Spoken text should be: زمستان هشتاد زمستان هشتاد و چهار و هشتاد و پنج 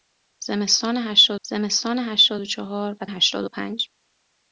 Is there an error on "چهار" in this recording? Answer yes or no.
no